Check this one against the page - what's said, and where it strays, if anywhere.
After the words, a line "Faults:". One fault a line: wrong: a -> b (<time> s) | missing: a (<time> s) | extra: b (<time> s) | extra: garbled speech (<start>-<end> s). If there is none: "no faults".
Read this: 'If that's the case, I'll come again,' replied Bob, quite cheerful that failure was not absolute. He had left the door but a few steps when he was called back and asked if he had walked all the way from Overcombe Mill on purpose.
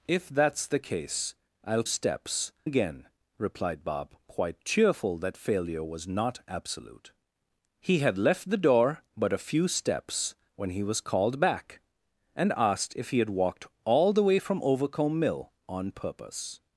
'If that's the case, I'll steps again,' replied Bob, quite cheerful that failure was not absolute. He had left the door but a few steps when he was called back and asked if he had walked all the way from Overcombe Mill on purpose.
Faults:
wrong: come -> steps (1.8 s)